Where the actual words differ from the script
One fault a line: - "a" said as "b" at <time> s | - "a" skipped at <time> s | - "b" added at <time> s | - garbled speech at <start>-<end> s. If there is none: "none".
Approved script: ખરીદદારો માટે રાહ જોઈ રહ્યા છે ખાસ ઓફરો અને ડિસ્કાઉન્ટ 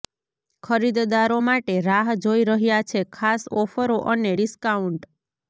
none